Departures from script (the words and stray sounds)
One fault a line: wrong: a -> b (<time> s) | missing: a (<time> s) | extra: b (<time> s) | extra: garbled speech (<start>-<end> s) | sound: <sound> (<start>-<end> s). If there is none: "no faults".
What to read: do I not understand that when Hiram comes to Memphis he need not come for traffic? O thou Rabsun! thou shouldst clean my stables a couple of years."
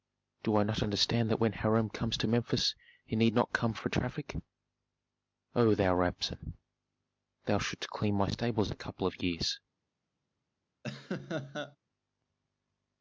sound: laugh (10.8-11.8 s)